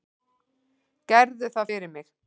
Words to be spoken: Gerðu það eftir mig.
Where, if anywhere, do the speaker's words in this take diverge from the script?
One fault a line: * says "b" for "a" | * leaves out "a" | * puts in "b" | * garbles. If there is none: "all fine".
* says "fyrir" for "eftir"